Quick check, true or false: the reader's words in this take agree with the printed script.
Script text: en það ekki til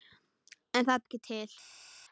true